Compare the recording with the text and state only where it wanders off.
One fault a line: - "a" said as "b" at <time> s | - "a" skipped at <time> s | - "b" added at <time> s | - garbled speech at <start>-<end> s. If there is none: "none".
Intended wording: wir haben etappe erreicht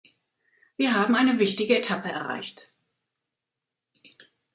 - "eine wichtige" added at 1.1 s